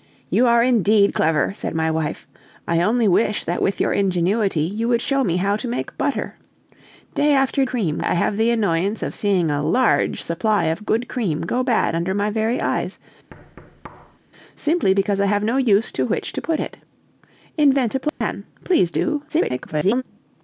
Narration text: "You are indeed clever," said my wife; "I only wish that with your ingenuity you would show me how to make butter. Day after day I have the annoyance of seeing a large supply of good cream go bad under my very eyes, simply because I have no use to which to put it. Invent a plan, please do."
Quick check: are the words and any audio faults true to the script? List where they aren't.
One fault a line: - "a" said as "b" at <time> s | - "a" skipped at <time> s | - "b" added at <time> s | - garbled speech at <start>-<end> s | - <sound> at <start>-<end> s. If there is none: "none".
- "day" said as "cream" at 7.6 s
- thud at 13.3-14.2 s
- dropout at 18.1-18.2 s
- garbled speech at 19.3-20.0 s